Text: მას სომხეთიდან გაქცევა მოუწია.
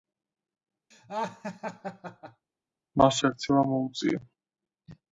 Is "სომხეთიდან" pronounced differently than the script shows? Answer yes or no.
yes